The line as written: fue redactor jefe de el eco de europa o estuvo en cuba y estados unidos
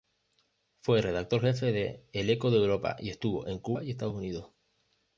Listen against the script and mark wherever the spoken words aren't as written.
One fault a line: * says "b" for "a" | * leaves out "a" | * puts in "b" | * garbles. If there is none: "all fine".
* says "y" for "o"